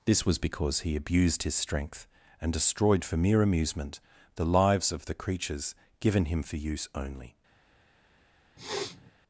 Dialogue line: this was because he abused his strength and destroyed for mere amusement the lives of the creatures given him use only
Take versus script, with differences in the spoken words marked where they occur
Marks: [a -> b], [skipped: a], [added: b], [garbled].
this was because he abused his strength and destroyed for mere amusement the lives of the creatures given him [added: for] use only